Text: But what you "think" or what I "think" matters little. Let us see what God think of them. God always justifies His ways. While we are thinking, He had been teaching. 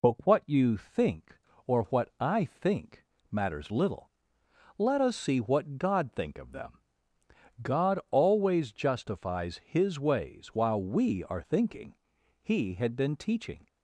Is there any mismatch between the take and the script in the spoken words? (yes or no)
no